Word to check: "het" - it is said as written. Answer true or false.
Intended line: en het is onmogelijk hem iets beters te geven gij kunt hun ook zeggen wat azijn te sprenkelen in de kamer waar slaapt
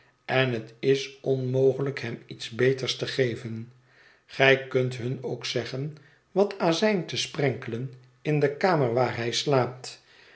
true